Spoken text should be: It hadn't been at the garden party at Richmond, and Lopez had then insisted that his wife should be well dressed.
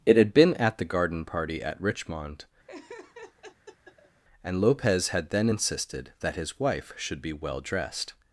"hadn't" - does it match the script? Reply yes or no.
no